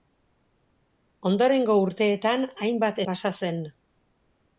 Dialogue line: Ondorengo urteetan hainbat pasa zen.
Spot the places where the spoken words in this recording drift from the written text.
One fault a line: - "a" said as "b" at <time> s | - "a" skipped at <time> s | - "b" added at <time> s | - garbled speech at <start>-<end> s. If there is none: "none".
none